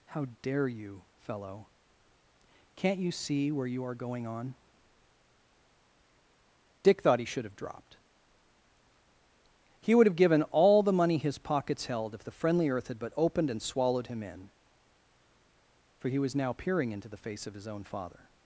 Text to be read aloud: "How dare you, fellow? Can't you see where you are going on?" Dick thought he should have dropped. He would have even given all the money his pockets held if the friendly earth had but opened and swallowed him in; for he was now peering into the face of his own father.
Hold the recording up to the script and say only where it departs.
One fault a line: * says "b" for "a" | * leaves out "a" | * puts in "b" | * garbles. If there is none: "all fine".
* leaves out "even"